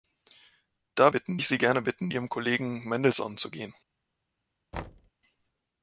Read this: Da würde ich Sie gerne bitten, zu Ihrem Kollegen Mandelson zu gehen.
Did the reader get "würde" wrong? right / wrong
wrong